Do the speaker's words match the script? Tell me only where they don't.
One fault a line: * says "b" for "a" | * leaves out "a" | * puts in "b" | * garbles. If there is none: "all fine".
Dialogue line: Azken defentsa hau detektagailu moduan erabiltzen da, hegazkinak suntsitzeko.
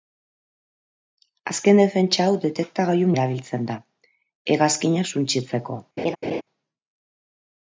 * leaves out "moduan"